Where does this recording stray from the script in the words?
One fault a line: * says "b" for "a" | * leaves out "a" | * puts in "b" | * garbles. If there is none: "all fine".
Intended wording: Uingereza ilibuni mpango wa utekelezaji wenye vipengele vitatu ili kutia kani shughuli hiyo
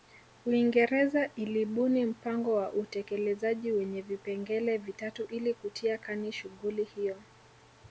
all fine